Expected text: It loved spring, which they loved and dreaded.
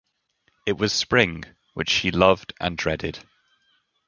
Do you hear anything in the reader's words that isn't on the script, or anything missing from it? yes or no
yes